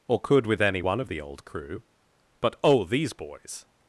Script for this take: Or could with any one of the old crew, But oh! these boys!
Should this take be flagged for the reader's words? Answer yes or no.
no